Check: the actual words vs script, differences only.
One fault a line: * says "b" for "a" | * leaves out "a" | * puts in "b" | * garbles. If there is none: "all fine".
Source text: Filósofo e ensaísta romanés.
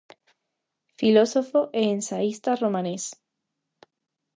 all fine